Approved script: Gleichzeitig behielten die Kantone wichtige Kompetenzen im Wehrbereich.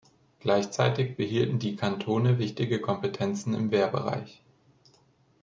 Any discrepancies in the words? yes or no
no